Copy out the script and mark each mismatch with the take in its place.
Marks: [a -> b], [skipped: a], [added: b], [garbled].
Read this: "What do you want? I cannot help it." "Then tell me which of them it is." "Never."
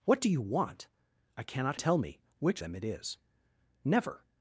"What do you want? I cannot [skipped: help it." "Then] tell me which [skipped: of] them it is." "Never."